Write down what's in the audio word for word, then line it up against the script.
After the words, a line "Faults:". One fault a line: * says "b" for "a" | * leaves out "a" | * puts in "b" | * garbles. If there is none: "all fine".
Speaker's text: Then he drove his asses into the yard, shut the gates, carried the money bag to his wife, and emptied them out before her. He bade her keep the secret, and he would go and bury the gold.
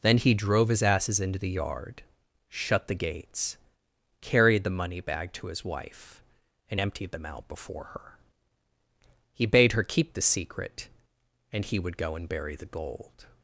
Then he drove his asses into the yard, shut the gates, carried the money bag to his wife, and emptied them out before her. He bade her keep the secret, and he would go and bury the gold.
Faults:
all fine